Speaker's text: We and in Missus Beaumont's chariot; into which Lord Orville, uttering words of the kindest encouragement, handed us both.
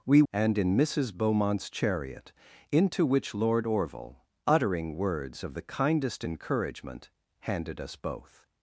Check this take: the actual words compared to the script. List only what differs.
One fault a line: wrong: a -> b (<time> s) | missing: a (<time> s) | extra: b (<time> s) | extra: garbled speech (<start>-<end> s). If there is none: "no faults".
no faults